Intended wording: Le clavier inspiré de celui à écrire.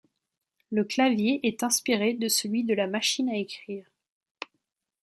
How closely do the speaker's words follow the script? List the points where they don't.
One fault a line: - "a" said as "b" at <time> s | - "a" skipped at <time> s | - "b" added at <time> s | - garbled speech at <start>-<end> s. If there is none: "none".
- "est" added at 1.4 s
- "de la machine" added at 2.6 s